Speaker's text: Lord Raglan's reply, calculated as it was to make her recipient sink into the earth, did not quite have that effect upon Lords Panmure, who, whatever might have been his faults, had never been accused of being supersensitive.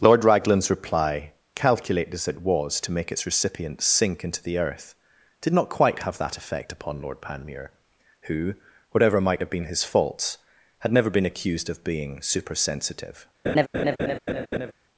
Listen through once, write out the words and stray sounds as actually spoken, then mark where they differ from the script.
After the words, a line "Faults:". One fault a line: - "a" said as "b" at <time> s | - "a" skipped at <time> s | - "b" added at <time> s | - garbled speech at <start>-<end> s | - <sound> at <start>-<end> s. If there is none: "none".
Lord Raglan's reply, calculated as it was to make its recipient sink into the earth, did not quite have that effect upon Lord Panmure, who, whatever might have been his faults, had never been accused of being supersensitive.
Faults:
- "her" said as "its" at 3.1 s
- "Lords" said as "Lord" at 7.0 s
- laugh at 13.4-14.7 s